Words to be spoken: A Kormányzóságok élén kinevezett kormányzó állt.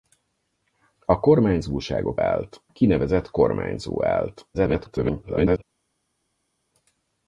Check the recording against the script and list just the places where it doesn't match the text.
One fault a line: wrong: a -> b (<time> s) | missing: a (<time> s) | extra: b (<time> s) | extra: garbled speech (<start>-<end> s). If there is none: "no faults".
wrong: élén -> állt (2.2 s)
extra: garbled speech (4.5-5.6 s)